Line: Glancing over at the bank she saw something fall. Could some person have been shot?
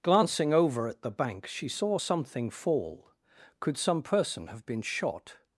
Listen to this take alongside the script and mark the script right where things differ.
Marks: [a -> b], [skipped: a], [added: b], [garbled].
Glancing over at the bank she saw something fall. Could some person have been shot?